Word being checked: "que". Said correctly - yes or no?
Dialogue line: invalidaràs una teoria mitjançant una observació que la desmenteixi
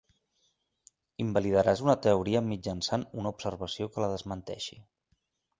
yes